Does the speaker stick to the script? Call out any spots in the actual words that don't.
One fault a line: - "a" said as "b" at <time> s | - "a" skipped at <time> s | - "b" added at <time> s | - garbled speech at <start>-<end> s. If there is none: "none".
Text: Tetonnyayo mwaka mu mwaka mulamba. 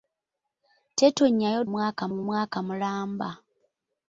none